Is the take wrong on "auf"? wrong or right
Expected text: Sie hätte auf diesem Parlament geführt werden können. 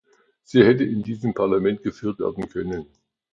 wrong